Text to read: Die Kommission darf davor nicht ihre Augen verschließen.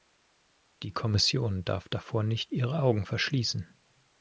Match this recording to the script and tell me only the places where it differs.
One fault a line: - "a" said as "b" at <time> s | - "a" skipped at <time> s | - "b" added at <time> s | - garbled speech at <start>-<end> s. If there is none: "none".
none